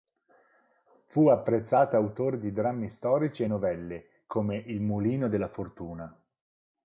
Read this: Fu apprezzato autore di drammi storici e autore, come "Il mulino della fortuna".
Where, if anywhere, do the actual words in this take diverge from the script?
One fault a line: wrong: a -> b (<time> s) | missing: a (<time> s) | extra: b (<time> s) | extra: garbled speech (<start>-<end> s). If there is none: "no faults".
wrong: autore -> novelle (3.4 s)